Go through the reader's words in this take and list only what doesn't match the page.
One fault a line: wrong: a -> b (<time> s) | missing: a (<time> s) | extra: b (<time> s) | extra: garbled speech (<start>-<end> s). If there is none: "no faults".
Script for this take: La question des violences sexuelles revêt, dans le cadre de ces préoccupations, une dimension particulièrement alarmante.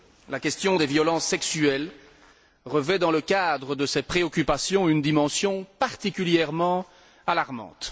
no faults